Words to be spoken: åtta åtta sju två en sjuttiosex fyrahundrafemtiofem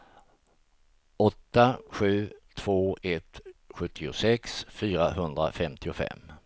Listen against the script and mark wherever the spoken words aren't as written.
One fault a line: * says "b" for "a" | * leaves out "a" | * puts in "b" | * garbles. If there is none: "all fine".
* leaves out "åtta"
* says "ett" for "en"